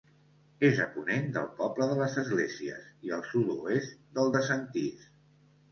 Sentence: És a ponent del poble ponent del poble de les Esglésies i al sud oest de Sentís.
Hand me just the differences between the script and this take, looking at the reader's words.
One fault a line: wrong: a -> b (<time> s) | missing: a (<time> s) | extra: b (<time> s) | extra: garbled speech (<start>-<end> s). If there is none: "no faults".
missing: ponent del poble (1.9 s)
extra: del (4.2 s)